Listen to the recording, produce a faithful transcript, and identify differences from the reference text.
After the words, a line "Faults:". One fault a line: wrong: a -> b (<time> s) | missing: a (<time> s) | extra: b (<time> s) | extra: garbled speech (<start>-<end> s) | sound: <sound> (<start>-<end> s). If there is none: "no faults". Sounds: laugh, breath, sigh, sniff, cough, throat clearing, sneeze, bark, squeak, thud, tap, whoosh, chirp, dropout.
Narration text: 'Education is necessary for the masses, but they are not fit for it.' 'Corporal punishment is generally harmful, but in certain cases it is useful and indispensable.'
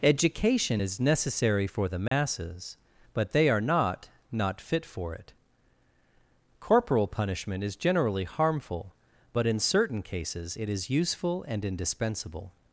'Education is necessary for the masses, but they are not not fit for it.' 'Corporal punishment is generally harmful, but in certain cases it is useful and indispensable.'
Faults:
sound: dropout (2.1-2.1 s)
extra: not (4.3 s)